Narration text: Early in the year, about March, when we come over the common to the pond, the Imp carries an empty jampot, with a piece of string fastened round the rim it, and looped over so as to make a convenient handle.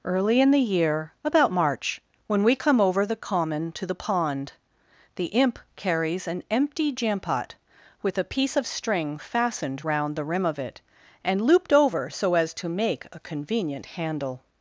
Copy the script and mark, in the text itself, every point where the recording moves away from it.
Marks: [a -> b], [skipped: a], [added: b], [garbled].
Early in the year, about March, when we come over the common to the pond, the Imp carries an empty jampot, with a piece of string fastened round the rim [added: of] it, and looped over so as to make a convenient handle.